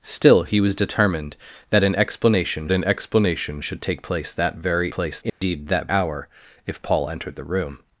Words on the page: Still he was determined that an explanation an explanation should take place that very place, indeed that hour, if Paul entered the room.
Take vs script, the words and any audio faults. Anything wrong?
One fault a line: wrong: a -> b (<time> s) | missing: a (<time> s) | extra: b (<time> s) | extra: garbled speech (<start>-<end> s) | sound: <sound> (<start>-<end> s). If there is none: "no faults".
sound: dropout (5.3-5.4 s)